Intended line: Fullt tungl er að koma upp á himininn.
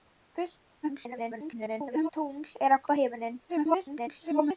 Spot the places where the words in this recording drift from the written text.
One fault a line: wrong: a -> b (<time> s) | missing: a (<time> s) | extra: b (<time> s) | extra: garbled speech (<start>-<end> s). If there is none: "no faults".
extra: garbled speech (0.8-2.1 s)
missing: koma (2.8 s)
extra: garbled speech (3.5-4.6 s)